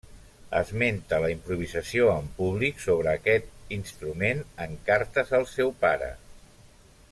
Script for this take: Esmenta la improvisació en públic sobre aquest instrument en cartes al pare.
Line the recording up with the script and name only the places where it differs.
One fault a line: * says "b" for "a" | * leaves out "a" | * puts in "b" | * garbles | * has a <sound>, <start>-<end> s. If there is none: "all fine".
* puts in "seu"